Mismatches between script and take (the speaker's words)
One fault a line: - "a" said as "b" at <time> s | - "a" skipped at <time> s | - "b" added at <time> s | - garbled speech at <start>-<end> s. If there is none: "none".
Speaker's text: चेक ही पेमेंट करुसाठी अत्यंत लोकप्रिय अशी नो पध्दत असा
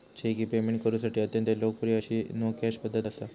- "कॅश" added at 2.5 s